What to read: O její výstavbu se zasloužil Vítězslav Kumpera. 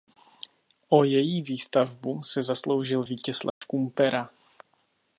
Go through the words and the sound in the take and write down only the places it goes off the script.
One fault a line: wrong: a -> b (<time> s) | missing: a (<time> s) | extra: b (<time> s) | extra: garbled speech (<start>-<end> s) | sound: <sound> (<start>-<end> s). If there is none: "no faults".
sound: dropout (3.5-3.6 s)